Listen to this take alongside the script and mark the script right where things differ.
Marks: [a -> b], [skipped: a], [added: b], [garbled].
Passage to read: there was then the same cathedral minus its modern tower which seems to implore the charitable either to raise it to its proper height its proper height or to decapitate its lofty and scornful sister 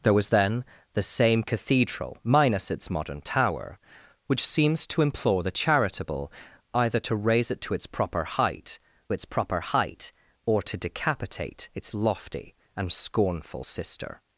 there was then the same cathedral minus its modern tower which seems to implore the charitable either to raise it to its proper height its proper height or to decapitate its lofty and scornful sister